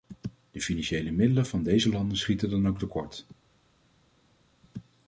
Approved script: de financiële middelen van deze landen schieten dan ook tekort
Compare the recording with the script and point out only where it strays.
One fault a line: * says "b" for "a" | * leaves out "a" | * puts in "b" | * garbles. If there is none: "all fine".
all fine